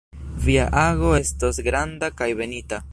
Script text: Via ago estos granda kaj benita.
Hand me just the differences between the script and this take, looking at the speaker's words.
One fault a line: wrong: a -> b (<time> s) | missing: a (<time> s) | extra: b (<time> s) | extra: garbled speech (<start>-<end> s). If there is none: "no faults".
no faults